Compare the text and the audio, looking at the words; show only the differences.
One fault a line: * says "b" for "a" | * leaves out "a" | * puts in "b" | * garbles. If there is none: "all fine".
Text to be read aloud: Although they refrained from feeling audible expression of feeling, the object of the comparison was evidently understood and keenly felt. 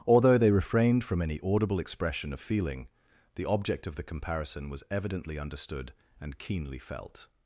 * says "any" for "feeling"